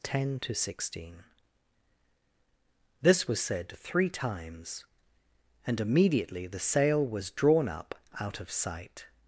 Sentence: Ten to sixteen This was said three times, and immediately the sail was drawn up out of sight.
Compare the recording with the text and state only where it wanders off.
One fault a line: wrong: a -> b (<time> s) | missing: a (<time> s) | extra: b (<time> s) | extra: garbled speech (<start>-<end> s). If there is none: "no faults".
no faults